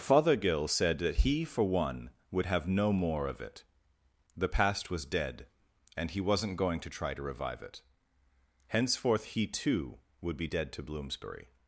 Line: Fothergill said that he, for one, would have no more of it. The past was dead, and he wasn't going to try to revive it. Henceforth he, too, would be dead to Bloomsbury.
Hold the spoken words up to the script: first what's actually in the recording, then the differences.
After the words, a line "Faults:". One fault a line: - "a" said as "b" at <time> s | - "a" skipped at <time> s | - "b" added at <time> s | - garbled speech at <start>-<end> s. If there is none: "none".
Fothergill said that he, for one, would have no more of it. The past was dead, and he wasn't going to try to revive it. Henceforth he, too, would be dead to Bloomsbury.
Faults:
none